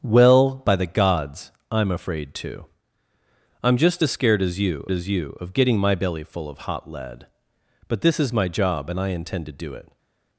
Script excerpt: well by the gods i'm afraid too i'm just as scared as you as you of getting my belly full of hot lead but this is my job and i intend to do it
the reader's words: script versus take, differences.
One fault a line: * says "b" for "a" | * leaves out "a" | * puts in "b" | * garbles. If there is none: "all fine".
all fine